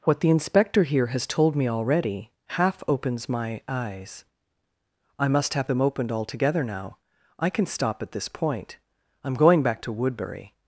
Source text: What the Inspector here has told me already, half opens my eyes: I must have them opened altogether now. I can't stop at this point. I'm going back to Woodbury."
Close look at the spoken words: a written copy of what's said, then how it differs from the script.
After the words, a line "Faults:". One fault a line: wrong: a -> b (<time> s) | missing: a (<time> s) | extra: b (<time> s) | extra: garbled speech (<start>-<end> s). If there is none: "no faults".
What the Inspector here has told me already, half opens my eyes: I must have them opened altogether now. I can stop at this point. I'm going back to Woodbury."
Faults:
wrong: can't -> can (7.5 s)